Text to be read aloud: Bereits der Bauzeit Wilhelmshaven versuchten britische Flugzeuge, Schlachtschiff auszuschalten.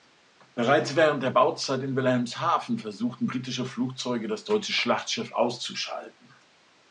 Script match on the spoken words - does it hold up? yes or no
no